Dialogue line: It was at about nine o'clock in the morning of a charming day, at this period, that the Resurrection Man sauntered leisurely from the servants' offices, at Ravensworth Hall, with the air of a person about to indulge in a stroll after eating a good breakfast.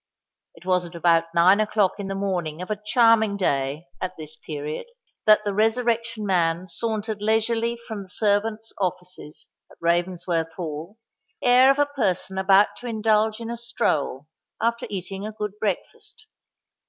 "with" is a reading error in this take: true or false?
true